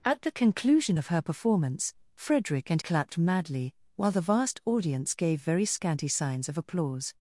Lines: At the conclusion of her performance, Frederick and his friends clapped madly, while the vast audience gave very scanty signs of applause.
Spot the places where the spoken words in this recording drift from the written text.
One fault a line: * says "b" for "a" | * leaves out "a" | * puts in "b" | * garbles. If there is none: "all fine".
* leaves out "his friends"